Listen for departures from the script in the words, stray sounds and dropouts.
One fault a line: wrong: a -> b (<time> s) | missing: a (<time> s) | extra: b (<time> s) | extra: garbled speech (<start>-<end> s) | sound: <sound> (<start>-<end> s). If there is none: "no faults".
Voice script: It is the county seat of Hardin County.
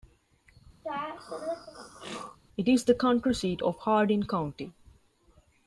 sound: throat clearing (0.8-2.4 s)